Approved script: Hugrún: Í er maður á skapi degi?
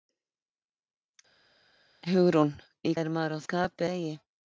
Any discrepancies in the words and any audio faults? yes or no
no